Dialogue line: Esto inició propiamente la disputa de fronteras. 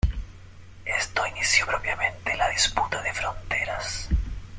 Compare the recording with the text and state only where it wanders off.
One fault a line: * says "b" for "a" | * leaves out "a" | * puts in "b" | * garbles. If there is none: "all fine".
all fine